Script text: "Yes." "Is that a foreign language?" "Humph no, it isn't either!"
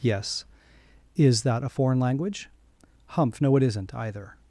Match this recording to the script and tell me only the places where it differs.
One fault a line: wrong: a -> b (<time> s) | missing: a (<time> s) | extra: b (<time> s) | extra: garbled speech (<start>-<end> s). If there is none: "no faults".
no faults